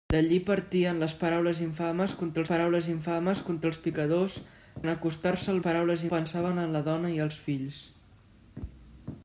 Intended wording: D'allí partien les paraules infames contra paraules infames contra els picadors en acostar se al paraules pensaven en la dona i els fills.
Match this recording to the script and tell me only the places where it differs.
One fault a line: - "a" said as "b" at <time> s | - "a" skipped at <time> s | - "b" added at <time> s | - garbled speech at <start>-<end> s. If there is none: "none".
none